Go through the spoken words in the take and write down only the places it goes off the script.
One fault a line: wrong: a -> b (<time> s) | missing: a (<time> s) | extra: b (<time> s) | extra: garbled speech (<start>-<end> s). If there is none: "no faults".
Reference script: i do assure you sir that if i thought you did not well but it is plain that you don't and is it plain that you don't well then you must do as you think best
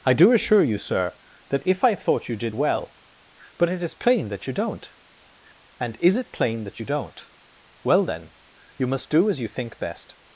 missing: not (2.5 s)